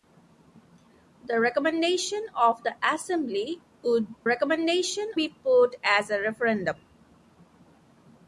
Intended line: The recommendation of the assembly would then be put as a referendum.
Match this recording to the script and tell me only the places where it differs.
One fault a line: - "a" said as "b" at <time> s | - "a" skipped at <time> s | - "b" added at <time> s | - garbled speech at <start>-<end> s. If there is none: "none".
- "then" said as "recommendation" at 4.2 s